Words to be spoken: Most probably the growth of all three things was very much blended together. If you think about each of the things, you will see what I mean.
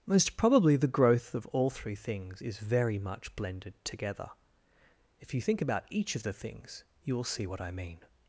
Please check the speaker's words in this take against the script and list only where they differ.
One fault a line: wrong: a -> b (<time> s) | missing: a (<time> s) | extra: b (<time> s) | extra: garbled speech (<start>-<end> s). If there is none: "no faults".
wrong: was -> is (2.4 s)